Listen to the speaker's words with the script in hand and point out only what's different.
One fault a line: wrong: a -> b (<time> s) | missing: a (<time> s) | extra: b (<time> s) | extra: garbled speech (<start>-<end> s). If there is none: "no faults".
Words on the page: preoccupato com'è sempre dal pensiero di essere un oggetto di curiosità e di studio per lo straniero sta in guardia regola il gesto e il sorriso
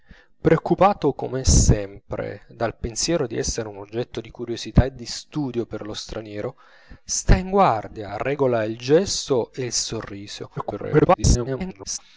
extra: garbled speech (10.6-12.0 s)